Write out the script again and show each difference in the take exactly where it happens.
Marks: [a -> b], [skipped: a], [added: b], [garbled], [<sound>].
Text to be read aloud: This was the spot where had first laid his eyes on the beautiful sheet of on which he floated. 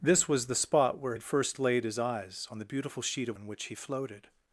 This was the spot where had first laid his eyes on the beautiful sheet of on which he floated.